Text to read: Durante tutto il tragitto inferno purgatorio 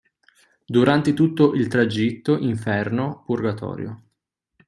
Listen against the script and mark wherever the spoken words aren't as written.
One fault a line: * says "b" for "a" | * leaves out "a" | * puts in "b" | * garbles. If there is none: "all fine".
all fine